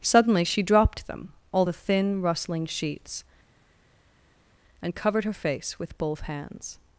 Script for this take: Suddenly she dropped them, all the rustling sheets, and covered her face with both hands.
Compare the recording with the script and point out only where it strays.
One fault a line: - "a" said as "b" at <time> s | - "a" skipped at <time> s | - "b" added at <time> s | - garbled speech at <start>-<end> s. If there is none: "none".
- "thin" added at 1.7 s